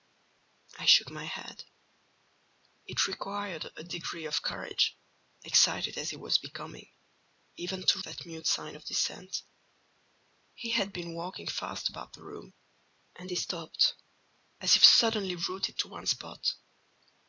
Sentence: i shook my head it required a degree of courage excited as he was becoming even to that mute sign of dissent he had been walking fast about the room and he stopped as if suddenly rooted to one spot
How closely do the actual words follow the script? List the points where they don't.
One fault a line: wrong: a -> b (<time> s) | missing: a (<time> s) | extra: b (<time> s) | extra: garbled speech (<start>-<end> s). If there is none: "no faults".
no faults